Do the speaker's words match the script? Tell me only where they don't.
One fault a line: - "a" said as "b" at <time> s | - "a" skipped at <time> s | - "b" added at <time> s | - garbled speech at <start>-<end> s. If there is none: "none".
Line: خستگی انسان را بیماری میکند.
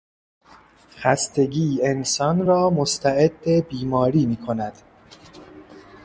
- "مستعد" added at 2.7 s